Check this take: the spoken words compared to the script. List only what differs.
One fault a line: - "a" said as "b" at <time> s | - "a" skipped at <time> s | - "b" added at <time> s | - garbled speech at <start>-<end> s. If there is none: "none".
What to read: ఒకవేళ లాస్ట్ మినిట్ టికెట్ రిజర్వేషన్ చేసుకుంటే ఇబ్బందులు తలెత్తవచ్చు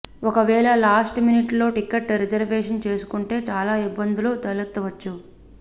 - "లో" added at 1.5 s
- "చాలా" added at 3.5 s